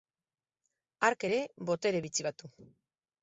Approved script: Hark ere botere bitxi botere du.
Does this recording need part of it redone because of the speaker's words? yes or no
yes